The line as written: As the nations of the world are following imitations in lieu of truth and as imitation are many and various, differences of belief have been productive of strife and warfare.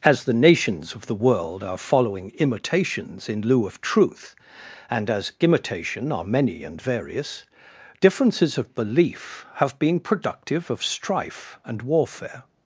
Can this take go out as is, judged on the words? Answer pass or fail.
pass